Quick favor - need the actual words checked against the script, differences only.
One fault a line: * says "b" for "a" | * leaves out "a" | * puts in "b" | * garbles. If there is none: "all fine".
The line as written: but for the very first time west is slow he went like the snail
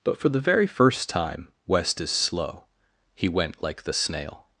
all fine